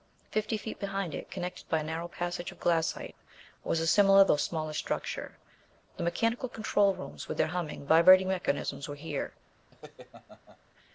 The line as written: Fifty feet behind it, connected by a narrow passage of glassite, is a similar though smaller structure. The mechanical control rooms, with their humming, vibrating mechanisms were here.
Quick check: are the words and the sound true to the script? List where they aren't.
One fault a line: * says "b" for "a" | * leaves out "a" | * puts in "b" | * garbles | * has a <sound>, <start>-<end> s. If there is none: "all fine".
* says "was" for "is"
* has a laugh, 9.7-10.6 s